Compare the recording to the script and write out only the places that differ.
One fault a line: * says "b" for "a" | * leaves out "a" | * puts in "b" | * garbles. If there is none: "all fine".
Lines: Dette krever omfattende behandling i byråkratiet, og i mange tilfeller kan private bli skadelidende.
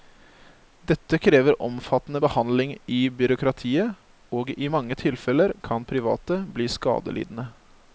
all fine